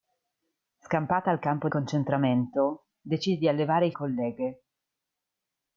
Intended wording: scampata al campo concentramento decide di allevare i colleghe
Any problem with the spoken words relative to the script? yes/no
no